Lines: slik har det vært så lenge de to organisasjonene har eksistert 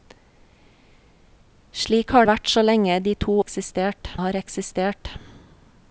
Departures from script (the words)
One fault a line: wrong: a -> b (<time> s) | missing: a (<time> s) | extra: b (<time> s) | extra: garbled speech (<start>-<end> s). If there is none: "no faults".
missing: det (2.3 s)
wrong: organisasjonene -> eksistert (3.4 s)